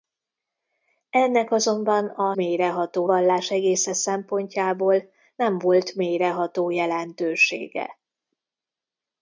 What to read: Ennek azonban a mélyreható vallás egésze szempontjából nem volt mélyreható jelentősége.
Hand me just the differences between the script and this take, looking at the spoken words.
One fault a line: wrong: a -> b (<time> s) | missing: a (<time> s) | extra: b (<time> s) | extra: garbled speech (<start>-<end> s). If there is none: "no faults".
no faults